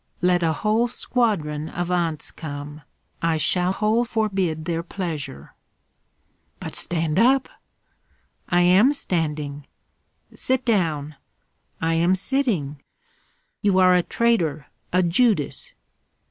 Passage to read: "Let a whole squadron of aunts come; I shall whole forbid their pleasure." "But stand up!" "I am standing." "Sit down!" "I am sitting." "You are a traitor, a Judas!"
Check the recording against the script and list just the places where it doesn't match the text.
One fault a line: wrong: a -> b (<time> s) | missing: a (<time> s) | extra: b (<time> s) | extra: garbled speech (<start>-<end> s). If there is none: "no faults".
no faults